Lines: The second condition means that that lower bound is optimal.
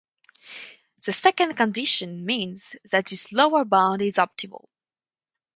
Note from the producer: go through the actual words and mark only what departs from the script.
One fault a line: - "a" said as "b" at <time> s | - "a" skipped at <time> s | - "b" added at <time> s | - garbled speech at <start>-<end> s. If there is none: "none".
- "that" said as "this" at 3.0 s